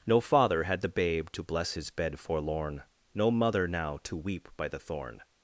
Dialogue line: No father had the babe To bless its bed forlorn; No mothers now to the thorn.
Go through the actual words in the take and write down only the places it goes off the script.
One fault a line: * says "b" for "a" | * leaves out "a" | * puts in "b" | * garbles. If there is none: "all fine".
* says "his" for "its"
* says "mother" for "mothers"
* puts in "weep By"